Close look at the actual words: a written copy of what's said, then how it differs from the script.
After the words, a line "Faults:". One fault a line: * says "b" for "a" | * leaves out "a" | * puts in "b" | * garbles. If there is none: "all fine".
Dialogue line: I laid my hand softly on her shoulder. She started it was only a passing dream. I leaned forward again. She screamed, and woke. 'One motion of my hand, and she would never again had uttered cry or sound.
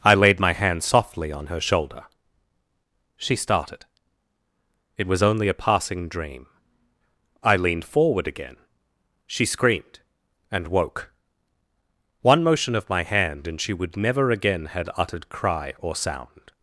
I laid my hand softly on her shoulder. She started it was only a passing dream. I leaned forward again. She screamed, and woke. 'One motion of my hand, and she would never again had uttered cry or sound.
Faults:
all fine